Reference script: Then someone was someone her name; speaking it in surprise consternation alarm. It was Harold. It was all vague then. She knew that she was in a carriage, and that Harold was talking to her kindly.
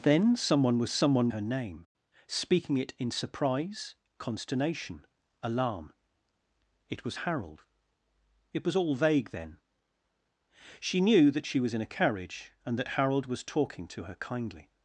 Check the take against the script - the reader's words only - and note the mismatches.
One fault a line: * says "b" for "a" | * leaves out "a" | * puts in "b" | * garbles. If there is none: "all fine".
all fine